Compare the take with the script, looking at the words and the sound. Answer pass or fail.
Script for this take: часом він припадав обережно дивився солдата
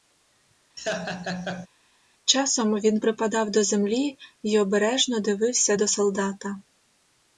fail